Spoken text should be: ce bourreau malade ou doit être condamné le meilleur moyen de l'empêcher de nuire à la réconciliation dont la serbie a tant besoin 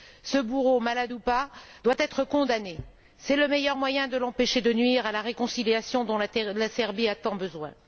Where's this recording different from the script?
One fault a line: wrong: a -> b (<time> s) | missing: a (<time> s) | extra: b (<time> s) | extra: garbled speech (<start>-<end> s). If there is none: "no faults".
extra: pas (1.2 s)
extra: c'est (3.2 s)